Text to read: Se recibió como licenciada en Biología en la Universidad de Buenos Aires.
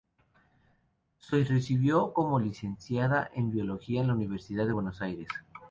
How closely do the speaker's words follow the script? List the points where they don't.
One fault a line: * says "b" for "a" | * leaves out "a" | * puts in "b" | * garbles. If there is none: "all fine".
all fine